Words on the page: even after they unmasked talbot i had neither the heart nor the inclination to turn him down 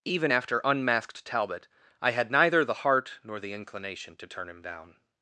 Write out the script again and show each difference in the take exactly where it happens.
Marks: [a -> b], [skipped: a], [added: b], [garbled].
even after [skipped: they] unmasked talbot i had neither the heart nor the inclination to turn him down